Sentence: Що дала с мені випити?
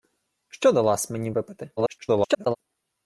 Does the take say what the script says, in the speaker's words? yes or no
no